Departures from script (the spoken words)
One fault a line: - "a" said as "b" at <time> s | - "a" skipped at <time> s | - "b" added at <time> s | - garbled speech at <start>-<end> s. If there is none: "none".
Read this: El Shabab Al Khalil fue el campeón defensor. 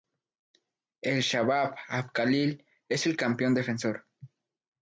- "fue" said as "es" at 2.9 s